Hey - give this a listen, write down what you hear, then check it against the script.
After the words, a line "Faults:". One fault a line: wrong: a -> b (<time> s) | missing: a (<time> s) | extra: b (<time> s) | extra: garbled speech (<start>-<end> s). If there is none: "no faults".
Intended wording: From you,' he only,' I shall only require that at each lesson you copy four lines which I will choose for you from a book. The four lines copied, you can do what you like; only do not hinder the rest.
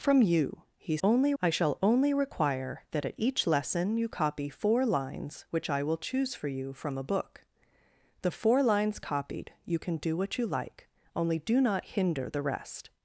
From you,' he only,' I shall only require that at each lesson you copy four lines which I will choose for you from a book. The four lines copied, you can do what you like; only do not hinder the rest.
Faults:
no faults